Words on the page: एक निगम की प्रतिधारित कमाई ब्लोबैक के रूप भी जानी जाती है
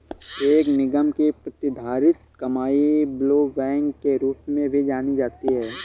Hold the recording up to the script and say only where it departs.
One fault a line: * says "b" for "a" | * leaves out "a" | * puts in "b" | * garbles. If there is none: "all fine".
* puts in "में"